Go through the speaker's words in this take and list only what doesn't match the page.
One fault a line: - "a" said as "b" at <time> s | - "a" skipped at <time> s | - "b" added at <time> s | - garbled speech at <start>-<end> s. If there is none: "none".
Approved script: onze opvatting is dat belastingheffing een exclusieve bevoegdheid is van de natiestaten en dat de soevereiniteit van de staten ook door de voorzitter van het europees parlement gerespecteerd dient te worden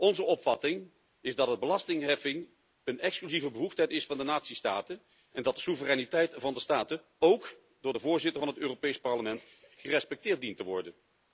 none